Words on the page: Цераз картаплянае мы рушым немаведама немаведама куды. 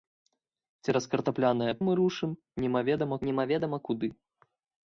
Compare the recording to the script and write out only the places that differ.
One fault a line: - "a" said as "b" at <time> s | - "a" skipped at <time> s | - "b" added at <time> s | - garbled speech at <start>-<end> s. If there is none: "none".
none